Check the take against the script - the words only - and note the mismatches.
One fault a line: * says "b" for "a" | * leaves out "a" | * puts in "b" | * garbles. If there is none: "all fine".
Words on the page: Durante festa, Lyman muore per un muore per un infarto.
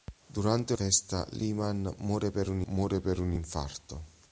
all fine